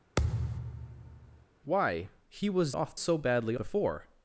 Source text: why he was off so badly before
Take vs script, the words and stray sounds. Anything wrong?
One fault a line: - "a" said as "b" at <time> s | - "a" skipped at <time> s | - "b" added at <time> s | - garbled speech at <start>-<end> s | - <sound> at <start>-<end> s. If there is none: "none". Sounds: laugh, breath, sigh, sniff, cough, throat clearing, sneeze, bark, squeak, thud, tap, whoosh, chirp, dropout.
- thud at 0.2-1.5 s